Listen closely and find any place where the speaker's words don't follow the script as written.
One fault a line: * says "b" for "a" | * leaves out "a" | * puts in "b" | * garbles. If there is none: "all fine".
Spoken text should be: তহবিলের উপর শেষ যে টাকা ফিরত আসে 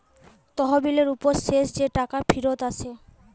all fine